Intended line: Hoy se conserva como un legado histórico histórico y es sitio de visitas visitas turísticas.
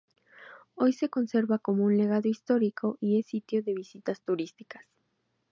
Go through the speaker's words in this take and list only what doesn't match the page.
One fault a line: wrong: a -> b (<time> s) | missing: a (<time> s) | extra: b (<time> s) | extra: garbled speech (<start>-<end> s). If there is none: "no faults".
missing: histórico (3.0 s)
missing: visitas (4.2 s)